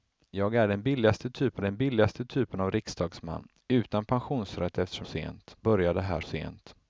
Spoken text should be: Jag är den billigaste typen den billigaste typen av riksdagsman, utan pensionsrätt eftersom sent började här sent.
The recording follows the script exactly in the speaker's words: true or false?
true